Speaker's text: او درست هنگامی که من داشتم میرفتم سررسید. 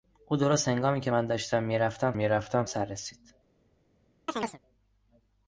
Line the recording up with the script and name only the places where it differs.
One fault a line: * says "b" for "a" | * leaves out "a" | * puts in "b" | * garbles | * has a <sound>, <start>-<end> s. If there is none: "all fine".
* puts in "میرفتم"
* has a chirp, 4.3-4.6 s